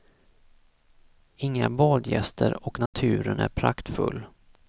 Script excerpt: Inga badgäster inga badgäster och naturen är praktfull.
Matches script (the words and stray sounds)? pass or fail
fail